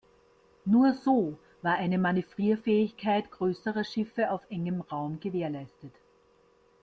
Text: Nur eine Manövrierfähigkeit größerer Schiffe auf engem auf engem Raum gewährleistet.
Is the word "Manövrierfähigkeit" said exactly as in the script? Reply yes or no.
yes